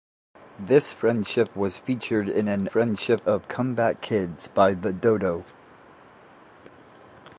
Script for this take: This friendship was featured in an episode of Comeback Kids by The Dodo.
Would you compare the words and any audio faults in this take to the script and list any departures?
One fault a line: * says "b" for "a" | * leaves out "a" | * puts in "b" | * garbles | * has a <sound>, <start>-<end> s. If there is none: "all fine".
* says "friendship" for "episode"